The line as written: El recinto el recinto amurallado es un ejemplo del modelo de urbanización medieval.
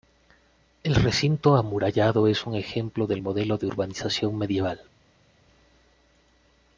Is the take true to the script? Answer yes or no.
no